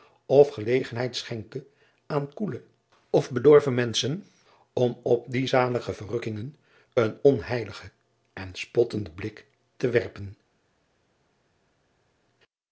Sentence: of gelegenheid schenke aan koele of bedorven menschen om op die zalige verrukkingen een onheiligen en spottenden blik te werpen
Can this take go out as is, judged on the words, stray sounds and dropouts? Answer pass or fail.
pass